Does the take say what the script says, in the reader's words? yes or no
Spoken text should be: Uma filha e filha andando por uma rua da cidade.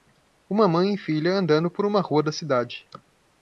no